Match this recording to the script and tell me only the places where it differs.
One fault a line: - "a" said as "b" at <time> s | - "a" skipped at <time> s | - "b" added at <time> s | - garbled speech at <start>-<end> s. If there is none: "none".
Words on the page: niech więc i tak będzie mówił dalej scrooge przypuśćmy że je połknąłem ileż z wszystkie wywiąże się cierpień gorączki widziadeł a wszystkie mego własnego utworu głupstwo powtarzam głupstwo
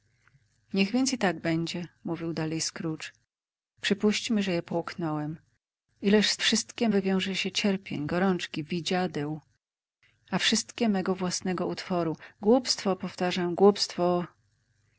none